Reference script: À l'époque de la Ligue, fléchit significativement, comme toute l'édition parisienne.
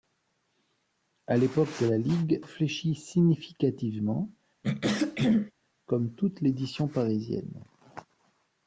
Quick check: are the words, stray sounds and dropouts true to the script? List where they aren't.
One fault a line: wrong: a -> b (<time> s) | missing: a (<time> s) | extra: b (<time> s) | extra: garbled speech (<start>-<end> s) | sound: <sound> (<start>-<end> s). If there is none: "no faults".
sound: throat clearing (4.6-5.5 s)